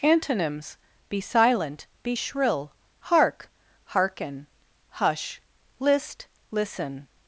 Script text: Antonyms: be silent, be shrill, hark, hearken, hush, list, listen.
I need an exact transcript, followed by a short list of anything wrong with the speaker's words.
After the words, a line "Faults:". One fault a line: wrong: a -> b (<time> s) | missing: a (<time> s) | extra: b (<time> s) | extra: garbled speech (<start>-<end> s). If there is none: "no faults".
Antonyms: be silent, be shrill, hark, hearken, hush, list, listen.
Faults:
no faults